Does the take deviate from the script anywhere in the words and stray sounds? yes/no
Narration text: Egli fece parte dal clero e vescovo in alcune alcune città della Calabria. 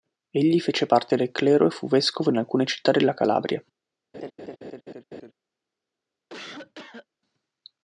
yes